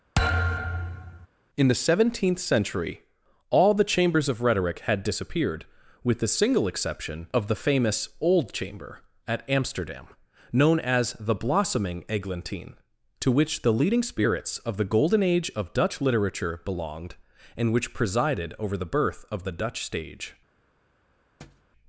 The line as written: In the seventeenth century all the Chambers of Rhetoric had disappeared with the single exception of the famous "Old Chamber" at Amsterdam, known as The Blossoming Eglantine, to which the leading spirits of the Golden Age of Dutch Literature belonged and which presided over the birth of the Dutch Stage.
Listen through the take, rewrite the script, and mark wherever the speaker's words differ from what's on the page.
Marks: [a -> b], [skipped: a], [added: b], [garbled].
In the seventeenth century all the Chambers of Rhetoric had disappeared with the single exception of the famous "Old Chamber" at Amsterdam, known as The Blossoming Eglantine, to which the leading spirits of the Golden Age of Dutch Literature belonged and which presided over the birth of the Dutch Stage.